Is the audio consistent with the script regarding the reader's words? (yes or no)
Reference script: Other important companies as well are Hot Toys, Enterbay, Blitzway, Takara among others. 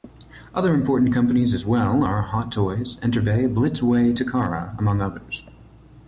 yes